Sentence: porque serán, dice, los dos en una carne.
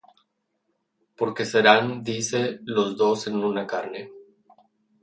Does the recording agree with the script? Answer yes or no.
yes